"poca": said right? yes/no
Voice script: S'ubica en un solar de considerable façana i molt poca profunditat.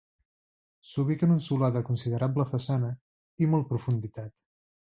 no